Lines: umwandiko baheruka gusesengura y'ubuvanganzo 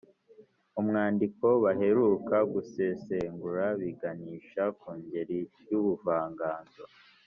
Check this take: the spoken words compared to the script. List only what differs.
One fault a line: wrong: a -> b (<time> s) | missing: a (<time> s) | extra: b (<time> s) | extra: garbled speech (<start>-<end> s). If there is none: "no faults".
extra: biganisha ku ngeri (3.8 s)